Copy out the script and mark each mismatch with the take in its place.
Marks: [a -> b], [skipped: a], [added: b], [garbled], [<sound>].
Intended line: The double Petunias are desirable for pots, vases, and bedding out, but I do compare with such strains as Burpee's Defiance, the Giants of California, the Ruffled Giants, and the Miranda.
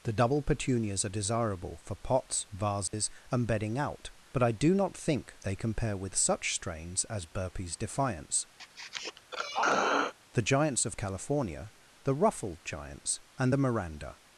The double Petunias are desirable for pots, vases, [dropout] and bedding out, but I do [added: not think they] compare with such strains as Burpee's Defiance, [throat clearing] the Giants of California, the Ruffled Giants, and the Miranda.